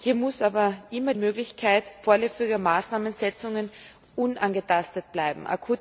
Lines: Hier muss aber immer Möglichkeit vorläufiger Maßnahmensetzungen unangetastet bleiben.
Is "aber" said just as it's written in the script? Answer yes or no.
yes